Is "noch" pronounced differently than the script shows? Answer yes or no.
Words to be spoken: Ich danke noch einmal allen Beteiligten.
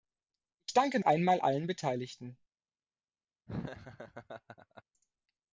yes